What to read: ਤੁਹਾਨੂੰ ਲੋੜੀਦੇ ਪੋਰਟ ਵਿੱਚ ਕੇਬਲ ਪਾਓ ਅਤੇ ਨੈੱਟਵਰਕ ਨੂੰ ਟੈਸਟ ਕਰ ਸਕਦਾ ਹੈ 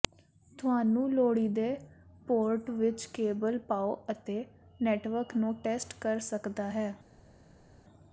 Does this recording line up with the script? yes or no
yes